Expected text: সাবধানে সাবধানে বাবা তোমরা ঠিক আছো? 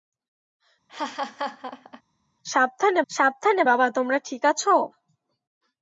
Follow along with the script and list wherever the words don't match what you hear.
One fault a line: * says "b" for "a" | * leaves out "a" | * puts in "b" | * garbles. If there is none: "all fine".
all fine